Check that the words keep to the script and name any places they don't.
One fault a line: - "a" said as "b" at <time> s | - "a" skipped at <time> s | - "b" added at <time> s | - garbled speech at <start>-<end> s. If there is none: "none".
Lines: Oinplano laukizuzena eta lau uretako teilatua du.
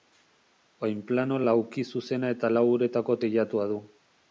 none